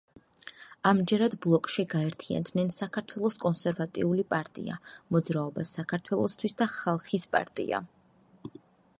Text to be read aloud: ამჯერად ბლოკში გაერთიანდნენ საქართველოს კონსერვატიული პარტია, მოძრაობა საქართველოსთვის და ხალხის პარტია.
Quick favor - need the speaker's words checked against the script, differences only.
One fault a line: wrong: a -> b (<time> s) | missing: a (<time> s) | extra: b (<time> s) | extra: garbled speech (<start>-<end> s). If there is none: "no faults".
no faults